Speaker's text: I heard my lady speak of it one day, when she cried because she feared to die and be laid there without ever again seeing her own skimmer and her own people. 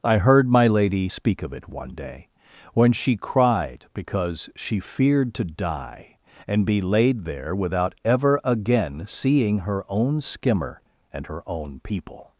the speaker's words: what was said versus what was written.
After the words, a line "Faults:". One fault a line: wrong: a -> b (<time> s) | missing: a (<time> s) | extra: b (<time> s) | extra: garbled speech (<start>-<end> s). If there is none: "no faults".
I heard my lady speak of it one day, when she cried because she feared to die and be laid there without ever again seeing her own skimmer and her own people.
Faults:
no faults